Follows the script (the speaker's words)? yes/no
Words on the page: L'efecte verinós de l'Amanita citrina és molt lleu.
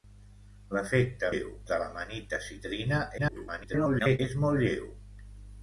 no